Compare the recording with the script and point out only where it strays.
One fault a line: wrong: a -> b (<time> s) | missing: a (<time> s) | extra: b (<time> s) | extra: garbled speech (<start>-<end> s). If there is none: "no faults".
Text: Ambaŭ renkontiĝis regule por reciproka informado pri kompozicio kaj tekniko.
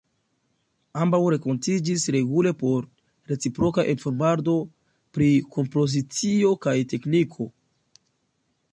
no faults